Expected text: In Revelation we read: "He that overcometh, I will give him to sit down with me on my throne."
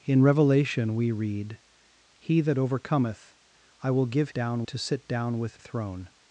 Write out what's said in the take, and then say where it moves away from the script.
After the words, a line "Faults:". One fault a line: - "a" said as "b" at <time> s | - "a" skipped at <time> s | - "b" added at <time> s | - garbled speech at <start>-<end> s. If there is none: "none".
In Revelation we read: "He that overcometh, I will give down to sit down with throne."
Faults:
- "him" said as "down" at 4.3 s
- "me on my" skipped at 5.6 s